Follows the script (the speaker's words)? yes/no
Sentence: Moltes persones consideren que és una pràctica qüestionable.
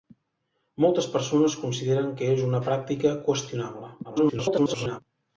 no